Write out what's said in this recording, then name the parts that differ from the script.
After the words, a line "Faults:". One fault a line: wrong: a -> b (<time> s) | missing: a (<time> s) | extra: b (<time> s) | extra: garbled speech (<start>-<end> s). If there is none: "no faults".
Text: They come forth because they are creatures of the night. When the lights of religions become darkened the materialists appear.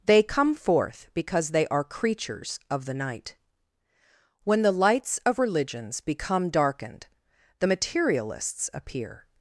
They come forth because they are creatures of the night. When the lights of religions become darkened the materialists appear.
Faults:
no faults